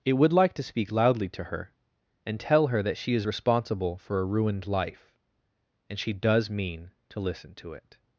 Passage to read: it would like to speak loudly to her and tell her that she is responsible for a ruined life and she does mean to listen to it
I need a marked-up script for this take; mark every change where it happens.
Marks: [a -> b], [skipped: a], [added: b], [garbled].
it would like to speak loudly to her and tell her that she is responsible for a ruined life and she does mean to listen to it